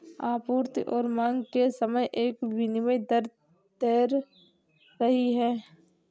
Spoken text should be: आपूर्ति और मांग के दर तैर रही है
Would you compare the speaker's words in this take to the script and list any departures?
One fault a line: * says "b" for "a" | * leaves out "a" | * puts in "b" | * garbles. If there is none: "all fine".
* puts in "समय एक विनिमय"